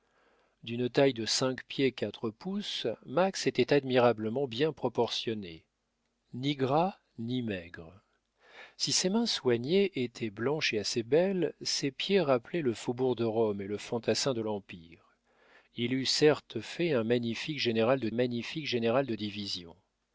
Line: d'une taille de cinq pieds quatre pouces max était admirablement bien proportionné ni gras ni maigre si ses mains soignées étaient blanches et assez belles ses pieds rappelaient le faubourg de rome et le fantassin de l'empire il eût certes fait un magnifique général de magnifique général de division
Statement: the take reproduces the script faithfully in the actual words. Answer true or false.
true